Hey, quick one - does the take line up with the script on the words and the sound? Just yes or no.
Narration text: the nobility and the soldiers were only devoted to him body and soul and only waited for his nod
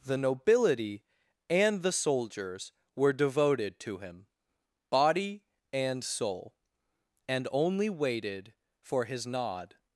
no